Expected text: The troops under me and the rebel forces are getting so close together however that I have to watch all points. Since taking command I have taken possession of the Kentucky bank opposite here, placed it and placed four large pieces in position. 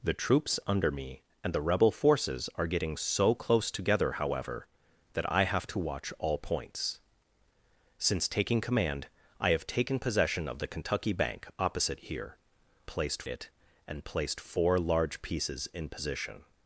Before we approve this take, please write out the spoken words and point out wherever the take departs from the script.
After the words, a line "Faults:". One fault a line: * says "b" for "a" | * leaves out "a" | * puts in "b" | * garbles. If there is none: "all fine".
The troops under me and the rebel forces are getting so close together however that I have to watch all points. Since taking command I have taken possession of the Kentucky bank opposite here, placed it and placed four large pieces in position.
Faults:
all fine